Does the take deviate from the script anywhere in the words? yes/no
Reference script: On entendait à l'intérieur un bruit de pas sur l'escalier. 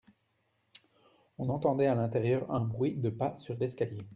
no